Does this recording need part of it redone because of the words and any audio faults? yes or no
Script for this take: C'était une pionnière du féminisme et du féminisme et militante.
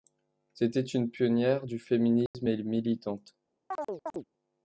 yes